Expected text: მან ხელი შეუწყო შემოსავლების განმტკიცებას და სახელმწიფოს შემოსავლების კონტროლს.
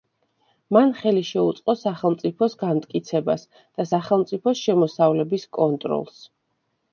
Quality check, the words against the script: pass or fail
fail